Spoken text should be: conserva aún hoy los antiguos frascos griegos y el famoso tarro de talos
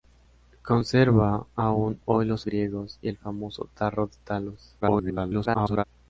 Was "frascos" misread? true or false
true